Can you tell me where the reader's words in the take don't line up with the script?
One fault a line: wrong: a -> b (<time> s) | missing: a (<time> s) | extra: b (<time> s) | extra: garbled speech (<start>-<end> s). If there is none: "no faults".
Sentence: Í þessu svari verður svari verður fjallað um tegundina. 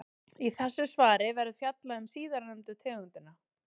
missing: svari verður (1.6 s)
extra: síðarnefndu (2.1 s)